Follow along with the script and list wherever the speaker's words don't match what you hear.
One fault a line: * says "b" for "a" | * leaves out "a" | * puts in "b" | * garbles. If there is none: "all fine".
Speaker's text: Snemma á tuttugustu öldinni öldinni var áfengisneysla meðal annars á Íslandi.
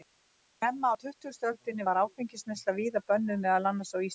* leaves out "öldinni"
* puts in "víða bönnuð"